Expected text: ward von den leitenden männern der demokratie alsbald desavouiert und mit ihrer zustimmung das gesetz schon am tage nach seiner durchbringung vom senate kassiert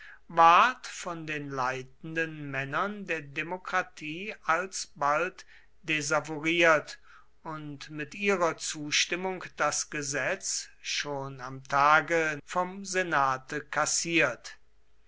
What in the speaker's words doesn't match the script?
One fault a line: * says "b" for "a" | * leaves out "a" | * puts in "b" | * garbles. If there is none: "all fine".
* leaves out "nach seiner durchbringung"